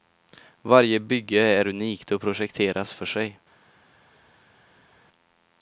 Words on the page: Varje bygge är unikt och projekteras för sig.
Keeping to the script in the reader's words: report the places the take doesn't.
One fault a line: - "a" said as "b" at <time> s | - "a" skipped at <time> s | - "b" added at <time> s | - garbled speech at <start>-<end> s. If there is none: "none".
none